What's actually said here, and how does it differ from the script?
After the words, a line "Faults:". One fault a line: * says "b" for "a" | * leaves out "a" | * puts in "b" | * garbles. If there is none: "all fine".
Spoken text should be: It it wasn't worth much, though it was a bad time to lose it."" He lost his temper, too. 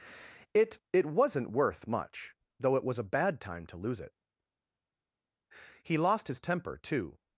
It it wasn't worth much, though it was a bad time to lose it."" He lost his temper, too.
Faults:
all fine